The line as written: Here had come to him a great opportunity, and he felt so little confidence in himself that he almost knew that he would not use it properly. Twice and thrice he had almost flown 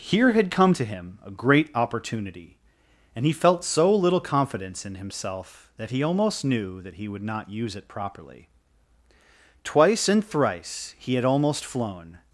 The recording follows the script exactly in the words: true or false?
true